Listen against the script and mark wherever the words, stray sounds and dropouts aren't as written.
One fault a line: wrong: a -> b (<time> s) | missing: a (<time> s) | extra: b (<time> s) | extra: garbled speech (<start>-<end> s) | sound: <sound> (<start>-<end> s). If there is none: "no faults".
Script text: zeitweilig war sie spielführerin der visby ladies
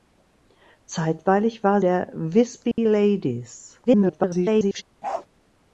missing: sie spielführerin (1.8 s)
sound: dropout (2.7-2.8 s)
extra: garbled speech (3.9-4.8 s)
sound: bark (5.0-5.3 s)